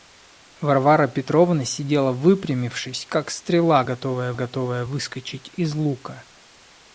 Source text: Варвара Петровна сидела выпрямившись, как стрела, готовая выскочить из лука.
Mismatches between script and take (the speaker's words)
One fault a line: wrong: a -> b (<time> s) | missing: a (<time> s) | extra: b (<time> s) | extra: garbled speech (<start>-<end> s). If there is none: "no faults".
extra: готовая (4.3 s)